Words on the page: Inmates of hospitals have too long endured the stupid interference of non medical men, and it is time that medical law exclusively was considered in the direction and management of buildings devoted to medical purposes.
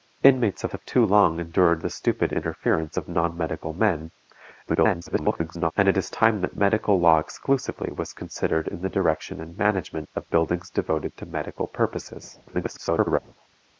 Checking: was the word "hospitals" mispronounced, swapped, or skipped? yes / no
yes